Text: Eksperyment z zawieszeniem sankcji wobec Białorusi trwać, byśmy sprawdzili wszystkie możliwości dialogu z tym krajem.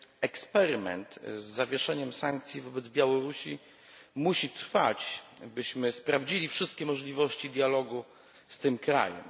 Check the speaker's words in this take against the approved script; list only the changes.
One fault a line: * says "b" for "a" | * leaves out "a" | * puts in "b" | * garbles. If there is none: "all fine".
* puts in "musi"